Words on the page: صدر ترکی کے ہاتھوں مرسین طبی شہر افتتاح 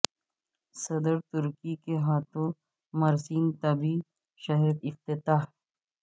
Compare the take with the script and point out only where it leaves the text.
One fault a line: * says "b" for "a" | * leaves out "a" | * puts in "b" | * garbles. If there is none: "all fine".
all fine